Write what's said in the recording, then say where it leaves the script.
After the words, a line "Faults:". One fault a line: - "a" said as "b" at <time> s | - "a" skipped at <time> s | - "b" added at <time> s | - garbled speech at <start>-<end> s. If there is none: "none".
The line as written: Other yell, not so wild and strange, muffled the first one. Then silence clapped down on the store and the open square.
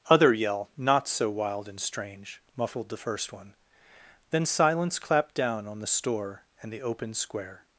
Other yell, not so wild and strange, muffled the first one. Then silence clapped down on the store and the open square.
Faults:
none